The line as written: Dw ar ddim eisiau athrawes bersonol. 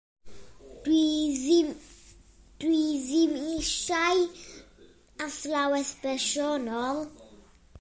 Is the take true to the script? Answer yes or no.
no